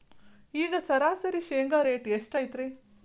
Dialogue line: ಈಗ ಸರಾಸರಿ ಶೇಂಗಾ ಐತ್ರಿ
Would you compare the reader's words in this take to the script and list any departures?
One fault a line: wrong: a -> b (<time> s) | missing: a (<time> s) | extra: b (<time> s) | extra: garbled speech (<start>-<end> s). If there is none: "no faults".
extra: ರೇಟ್ ಎಷ್ಟು (1.8 s)